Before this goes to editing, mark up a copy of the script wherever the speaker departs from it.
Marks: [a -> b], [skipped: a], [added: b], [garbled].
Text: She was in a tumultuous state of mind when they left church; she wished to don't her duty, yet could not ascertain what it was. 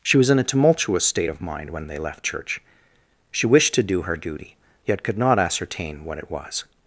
She was in a tumultuous state of mind when they left church; she wished to [don't -> do] her duty, yet could not ascertain what it was.